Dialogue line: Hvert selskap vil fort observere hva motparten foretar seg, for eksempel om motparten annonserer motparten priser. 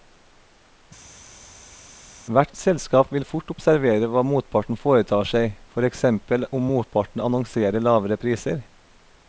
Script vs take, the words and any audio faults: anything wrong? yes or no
yes